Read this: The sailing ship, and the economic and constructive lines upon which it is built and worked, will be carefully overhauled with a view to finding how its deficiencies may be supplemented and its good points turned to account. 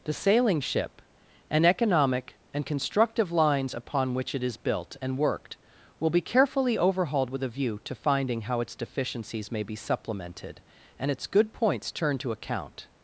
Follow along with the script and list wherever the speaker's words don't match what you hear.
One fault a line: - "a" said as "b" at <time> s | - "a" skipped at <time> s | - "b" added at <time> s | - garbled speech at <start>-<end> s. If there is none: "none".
- "the" skipped at 1.6 s